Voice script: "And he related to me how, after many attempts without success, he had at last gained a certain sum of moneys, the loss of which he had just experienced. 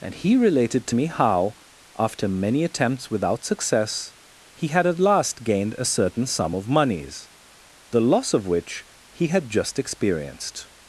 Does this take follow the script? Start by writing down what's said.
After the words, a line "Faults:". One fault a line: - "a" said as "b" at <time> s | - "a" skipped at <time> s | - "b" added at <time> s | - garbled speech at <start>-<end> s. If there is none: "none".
"And he related to me how, after many attempts without success, he had at last gained a certain sum of moneys, the loss of which he had just experienced.
Faults:
none